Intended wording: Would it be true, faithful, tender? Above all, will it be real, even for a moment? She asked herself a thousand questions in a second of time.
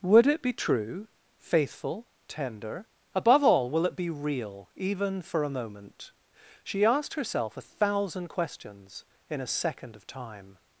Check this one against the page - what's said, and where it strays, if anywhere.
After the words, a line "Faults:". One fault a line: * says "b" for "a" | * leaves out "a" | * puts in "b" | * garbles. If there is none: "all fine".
Would it be true, faithful, tender? Above all, will it be real, even for a moment? She asked herself a thousand questions in a second of time.
Faults:
all fine